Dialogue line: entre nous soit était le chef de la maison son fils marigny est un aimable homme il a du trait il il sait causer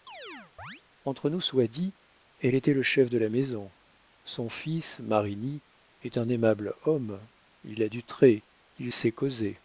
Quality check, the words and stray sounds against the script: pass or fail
fail